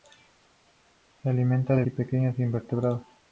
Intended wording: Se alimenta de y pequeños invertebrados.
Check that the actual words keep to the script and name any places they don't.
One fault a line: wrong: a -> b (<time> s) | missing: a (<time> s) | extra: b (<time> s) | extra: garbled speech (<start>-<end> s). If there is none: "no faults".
no faults